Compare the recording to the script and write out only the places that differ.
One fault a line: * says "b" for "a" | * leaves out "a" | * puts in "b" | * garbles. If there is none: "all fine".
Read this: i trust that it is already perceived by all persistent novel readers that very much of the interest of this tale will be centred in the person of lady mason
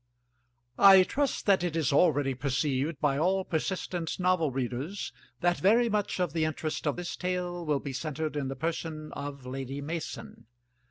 all fine